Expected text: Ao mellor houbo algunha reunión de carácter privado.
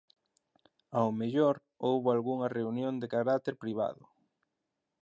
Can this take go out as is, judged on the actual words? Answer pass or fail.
pass